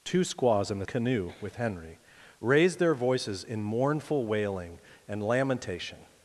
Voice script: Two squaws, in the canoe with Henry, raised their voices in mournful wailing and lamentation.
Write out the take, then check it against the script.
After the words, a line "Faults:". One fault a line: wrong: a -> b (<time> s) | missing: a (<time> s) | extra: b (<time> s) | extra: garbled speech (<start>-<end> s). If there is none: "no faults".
Two squaws, in the canoe with Henry, raised their voices in mournful wailing and lamentation.
Faults:
no faults